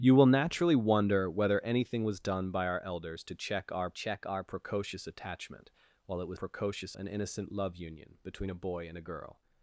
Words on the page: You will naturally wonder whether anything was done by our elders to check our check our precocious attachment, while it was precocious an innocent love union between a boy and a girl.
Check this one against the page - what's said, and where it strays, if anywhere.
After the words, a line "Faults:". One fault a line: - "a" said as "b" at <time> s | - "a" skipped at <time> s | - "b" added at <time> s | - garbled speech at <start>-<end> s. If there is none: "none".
You will naturally wonder whether anything was done by our elders to check our check our precocious attachment, while it was precocious an innocent love union between a boy and a girl.
Faults:
none